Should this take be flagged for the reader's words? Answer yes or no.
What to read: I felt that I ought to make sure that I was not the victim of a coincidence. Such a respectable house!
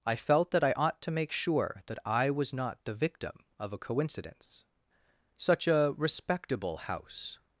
no